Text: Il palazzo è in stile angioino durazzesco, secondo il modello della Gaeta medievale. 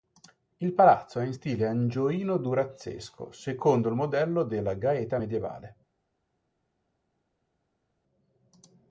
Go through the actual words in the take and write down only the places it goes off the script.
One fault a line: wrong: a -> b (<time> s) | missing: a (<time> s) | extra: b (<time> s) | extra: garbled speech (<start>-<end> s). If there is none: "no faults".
no faults